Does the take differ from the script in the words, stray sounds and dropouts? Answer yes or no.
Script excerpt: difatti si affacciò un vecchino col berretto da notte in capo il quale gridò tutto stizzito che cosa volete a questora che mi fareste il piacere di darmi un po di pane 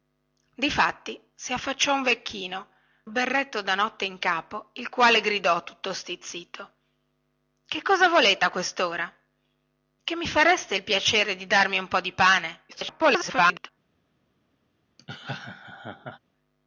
yes